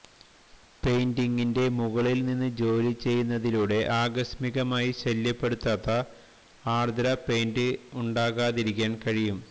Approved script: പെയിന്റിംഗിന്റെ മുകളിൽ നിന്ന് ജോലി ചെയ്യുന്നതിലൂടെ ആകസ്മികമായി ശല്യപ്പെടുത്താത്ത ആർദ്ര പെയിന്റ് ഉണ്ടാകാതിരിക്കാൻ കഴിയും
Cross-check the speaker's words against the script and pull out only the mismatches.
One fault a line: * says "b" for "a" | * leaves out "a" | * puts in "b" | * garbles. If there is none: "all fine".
all fine